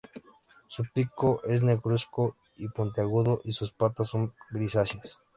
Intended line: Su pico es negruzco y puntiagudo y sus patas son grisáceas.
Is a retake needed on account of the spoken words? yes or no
no